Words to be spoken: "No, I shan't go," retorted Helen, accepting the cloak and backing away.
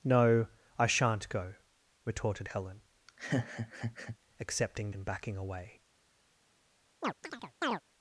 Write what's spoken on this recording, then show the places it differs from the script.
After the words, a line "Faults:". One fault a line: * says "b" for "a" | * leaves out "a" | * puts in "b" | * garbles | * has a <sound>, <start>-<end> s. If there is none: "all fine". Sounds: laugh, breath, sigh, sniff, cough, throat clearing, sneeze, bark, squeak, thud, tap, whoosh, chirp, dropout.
"No, I shan't go," retorted Helen, accepting and backing away.
Faults:
* has a laugh, 3.1-4.2 s
* leaves out "the cloak"
* has a chirp, 7.0-7.8 s